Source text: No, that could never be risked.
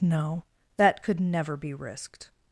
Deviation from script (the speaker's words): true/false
false